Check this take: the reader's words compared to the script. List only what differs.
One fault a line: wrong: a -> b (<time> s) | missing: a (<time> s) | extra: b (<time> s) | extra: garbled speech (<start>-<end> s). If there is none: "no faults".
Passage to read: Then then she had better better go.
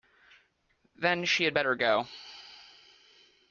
missing: then (1.2 s)
missing: better (1.7 s)